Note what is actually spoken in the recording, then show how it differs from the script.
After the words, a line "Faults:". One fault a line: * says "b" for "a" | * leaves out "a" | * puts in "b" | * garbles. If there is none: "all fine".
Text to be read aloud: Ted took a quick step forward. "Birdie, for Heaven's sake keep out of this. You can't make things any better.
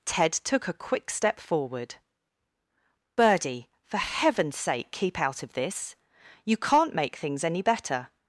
Ted took a quick step forward. "Birdie, for Heaven's sake keep out of this. You can't make things any better.
Faults:
all fine